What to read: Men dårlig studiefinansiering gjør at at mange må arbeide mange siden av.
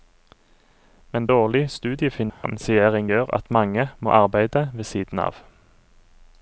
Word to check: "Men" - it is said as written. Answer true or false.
true